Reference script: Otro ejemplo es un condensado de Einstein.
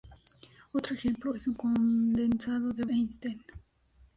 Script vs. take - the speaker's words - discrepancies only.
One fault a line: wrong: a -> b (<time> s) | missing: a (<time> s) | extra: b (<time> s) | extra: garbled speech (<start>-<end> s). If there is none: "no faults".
no faults